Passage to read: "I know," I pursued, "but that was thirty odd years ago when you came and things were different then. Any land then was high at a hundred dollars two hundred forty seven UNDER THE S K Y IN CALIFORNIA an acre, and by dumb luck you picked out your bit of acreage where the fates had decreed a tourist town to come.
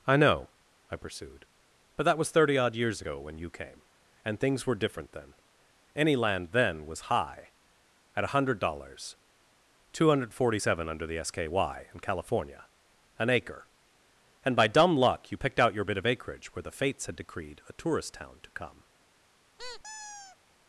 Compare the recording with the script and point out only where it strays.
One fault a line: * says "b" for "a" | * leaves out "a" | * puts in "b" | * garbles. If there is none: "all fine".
all fine